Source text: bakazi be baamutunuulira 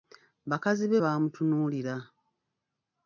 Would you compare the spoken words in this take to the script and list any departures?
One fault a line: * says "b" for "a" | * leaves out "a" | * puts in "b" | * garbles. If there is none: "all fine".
all fine